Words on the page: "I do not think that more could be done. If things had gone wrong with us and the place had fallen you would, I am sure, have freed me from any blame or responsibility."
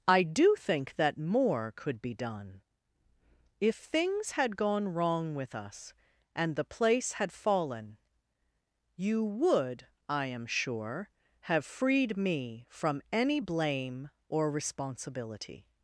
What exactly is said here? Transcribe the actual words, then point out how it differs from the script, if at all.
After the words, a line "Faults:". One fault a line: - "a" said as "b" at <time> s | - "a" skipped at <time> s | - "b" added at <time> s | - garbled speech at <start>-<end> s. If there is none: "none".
"I do think that more could be done. If things had gone wrong with us and the place had fallen you would, I am sure, have freed me from any blame or responsibility."
Faults:
- "not" skipped at 0.6 s